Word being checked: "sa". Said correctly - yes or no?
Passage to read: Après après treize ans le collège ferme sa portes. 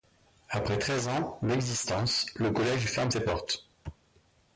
no